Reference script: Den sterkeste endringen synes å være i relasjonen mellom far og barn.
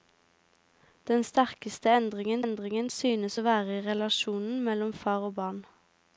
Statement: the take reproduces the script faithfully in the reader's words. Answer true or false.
false